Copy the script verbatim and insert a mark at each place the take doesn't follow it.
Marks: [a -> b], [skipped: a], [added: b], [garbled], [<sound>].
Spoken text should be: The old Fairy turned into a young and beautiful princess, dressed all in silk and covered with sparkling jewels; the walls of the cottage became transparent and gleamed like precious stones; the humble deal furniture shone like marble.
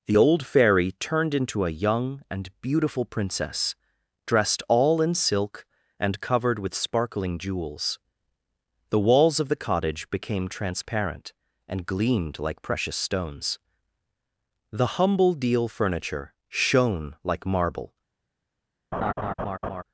The old Fairy turned into a young and beautiful princess, dressed all in silk and covered with sparkling jewels; the walls of the cottage became transparent and gleamed like precious stones; the humble deal furniture shone like marble. [laugh]